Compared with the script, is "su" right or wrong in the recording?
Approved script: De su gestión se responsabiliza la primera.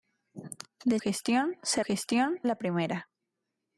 wrong